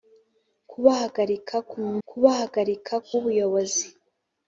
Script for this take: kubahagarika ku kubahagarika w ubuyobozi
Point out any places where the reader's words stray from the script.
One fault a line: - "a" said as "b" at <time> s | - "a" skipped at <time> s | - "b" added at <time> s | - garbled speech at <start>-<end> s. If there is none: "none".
none